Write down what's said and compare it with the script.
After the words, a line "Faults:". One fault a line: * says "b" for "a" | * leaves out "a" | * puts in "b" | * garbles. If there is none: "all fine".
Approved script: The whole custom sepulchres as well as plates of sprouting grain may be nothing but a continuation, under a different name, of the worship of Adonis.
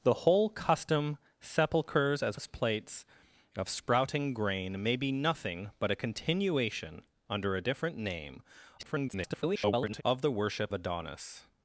The whole custom sepulchres as as plates of sprouting grain may be nothing but a continuation, under a different name, [garbled] of the worship Adonis.
Faults:
* leaves out "well"
* garbles
* leaves out "of"